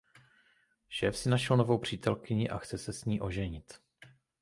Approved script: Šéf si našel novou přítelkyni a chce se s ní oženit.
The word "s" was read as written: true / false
true